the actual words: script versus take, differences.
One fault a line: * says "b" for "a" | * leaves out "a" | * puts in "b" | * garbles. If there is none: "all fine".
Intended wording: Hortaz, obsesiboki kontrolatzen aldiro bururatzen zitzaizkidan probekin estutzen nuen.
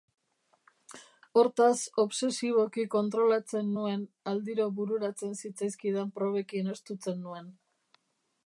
* puts in "nuen"